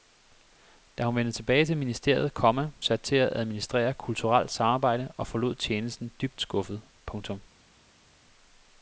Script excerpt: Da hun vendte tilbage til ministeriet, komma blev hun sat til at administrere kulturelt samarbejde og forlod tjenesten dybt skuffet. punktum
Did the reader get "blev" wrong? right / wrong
wrong